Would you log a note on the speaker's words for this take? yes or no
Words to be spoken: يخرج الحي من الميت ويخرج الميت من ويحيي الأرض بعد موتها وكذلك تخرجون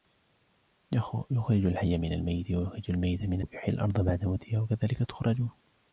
no